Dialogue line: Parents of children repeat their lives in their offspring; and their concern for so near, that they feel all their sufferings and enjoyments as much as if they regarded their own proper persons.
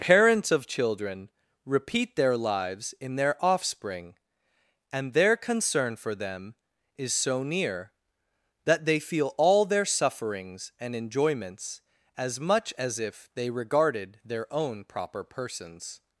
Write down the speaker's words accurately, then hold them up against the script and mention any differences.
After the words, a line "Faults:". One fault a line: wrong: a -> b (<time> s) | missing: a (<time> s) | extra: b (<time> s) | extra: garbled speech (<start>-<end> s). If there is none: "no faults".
Parents of children repeat their lives in their offspring; and their concern for them is so near, that they feel all their sufferings and enjoyments as much as if they regarded their own proper persons.
Faults:
extra: them is (6.2 s)